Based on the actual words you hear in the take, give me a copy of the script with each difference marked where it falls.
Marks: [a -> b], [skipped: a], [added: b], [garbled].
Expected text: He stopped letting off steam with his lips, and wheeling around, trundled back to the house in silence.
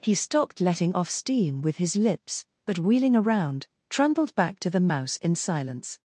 He stopped letting off steam with his lips, [and -> but] wheeling around, trundled back to the [house -> mouse] in silence.